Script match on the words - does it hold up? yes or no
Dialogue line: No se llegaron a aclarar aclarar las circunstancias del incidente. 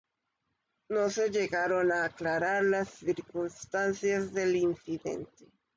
no